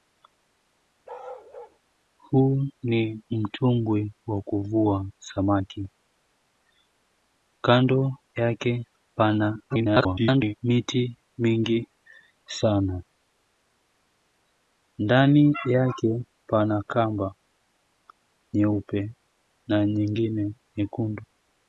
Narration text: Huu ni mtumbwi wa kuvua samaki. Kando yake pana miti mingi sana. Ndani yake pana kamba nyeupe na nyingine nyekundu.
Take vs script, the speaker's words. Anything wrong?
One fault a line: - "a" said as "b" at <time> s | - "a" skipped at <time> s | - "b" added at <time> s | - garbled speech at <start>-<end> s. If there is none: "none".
- garbled speech at 9.7-10.5 s